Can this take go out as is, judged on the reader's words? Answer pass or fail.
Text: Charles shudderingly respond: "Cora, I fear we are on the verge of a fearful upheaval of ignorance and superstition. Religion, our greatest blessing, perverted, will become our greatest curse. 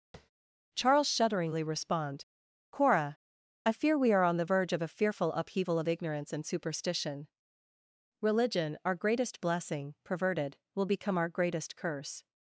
pass